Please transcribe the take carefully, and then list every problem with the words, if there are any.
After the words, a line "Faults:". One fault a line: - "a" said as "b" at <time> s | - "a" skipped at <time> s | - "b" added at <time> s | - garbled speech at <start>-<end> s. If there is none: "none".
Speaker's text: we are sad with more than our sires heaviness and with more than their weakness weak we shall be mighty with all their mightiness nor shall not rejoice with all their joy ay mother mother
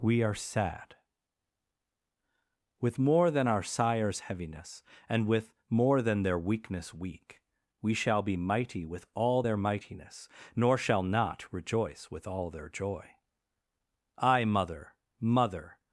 we are sad with more than our sires heaviness and with more than their weakness weak we shall be mighty with all their mightiness nor shall not rejoice with all their joy ay mother mother
Faults:
none